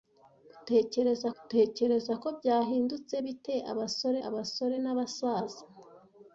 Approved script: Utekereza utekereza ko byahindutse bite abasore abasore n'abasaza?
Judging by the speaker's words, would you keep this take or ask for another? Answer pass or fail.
pass